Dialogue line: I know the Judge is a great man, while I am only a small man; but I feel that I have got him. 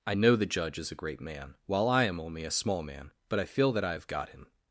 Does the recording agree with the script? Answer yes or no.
yes